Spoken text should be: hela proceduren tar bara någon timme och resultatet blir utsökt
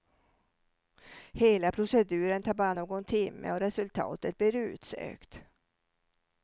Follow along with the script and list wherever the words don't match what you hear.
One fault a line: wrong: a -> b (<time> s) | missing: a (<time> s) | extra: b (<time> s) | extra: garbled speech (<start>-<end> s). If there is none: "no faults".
no faults